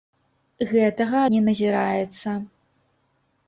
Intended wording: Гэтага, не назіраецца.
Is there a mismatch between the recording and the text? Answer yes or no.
no